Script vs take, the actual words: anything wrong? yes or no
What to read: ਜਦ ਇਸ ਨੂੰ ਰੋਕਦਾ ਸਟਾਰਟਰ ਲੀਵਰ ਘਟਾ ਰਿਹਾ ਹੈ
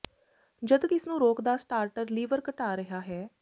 no